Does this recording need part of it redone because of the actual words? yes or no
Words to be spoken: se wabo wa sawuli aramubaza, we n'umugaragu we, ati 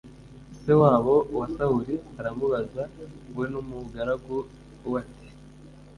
no